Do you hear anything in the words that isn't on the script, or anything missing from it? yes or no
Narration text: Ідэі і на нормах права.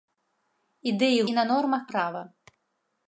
no